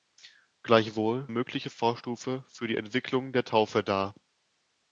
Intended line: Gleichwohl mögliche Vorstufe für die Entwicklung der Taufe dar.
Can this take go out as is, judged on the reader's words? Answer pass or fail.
pass